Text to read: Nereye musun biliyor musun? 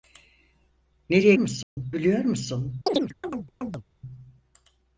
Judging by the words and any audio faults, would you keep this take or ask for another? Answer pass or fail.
fail